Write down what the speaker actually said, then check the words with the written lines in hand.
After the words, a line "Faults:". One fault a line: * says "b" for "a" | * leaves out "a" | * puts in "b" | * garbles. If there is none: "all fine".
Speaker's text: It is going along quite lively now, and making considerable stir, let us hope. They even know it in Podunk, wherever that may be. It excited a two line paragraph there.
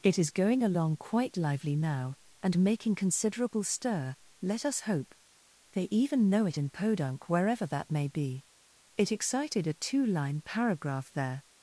It is going along quite lively now, and making considerable stir, let us hope. They even know it in Podunk, wherever that may be. It excited a two line paragraph there.
Faults:
all fine